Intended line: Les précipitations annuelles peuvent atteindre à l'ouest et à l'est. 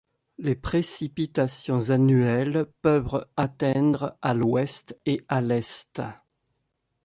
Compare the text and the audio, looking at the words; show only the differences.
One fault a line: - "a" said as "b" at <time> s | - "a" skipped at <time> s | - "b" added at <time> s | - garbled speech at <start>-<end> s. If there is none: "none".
none